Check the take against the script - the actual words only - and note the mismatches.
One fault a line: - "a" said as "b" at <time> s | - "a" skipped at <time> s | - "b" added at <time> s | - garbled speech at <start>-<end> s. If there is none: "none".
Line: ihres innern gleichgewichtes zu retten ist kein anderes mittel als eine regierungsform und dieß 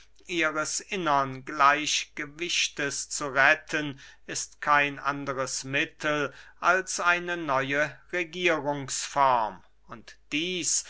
- "neue" added at 7.4 s